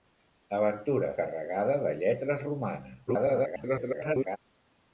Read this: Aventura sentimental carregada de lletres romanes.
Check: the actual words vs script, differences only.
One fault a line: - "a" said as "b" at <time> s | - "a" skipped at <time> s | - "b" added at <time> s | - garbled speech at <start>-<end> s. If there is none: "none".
- "sentimental" skipped at 1.1 s
- garbled speech at 3.1-4.4 s